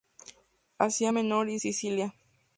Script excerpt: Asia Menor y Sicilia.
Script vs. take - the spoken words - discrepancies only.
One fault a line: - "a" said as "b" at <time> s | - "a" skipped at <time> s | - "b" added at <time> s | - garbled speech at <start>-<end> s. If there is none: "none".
none